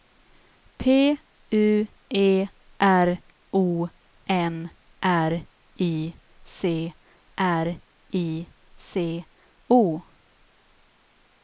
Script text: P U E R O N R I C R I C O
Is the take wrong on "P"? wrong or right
right